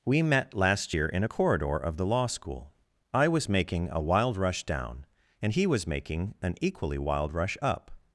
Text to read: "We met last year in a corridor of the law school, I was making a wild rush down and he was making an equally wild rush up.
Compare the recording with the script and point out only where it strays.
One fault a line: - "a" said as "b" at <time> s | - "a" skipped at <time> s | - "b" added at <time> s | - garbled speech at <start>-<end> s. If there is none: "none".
none